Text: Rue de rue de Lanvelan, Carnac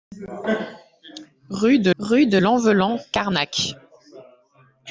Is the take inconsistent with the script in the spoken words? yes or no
no